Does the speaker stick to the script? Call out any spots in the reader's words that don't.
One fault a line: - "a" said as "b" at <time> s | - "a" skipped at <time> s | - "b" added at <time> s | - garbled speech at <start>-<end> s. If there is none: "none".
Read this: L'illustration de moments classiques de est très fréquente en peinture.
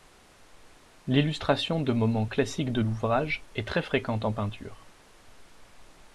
- "l'ouvrage" added at 2.8 s